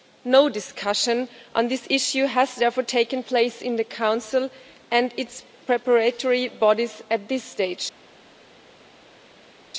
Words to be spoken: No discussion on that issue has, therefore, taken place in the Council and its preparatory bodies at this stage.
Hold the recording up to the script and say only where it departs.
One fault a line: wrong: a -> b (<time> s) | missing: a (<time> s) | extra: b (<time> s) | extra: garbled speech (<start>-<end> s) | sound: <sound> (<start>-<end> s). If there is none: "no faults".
wrong: that -> this (1.7 s)